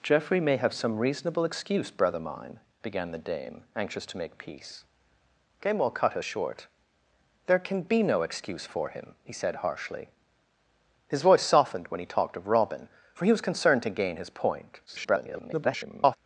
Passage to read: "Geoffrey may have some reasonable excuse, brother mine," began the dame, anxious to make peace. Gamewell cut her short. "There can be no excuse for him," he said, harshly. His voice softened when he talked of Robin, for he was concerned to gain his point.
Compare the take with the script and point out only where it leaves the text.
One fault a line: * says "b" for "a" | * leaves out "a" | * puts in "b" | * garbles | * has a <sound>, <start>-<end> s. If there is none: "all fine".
* garbles